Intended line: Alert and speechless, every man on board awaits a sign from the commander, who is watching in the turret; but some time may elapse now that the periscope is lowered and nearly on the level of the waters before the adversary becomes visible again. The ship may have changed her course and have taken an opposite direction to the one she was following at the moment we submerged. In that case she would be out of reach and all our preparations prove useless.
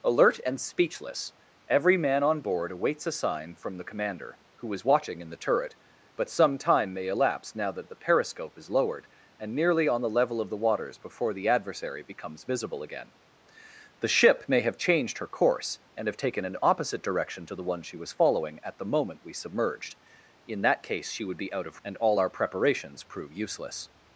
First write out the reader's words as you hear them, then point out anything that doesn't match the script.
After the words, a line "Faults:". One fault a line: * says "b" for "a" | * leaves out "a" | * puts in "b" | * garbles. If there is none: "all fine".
Alert and speechless, every man on board awaits a sign from the commander, who is watching in the turret; but some time may elapse now that the periscope is lowered and nearly on the level of the waters before the adversary becomes visible again. The ship may have changed her course and have taken an opposite direction to the one she was following at the moment we submerged. In that case she would be out of and all our preparations prove useless.
Faults:
* leaves out "reach"